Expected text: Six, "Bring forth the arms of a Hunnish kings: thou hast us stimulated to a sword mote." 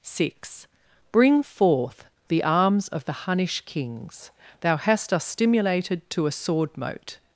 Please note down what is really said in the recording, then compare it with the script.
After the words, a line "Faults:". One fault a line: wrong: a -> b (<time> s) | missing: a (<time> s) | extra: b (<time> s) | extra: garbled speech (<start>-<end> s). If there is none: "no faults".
Six, "Bring forth the arms of the Hunnish kings: thou hast us stimulated to a sword mote."
Faults:
wrong: a -> the (3.0 s)